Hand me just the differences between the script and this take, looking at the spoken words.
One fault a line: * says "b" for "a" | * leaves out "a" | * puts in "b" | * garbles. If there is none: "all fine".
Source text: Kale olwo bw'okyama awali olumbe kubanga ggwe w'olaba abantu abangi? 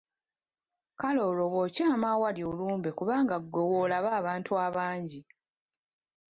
all fine